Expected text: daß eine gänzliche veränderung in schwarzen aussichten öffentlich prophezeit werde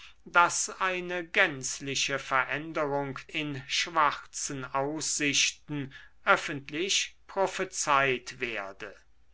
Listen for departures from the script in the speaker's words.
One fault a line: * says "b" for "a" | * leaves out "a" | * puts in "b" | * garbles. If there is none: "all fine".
all fine